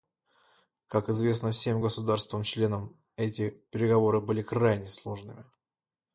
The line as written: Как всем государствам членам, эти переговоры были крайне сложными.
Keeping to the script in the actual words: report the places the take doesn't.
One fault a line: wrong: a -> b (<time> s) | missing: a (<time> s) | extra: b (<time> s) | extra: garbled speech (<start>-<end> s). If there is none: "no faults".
extra: известно (1.1 s)